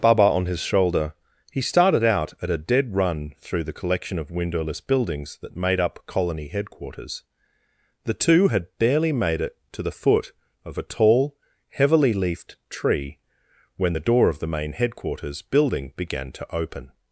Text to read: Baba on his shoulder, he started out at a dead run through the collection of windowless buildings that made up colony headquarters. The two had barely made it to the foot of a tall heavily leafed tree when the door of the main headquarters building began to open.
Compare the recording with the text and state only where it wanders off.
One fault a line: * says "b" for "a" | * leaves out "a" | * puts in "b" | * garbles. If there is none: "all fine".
all fine